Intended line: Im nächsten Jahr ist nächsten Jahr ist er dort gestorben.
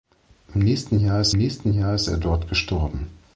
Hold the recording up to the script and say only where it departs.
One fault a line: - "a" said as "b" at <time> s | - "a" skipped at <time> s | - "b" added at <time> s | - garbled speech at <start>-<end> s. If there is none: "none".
none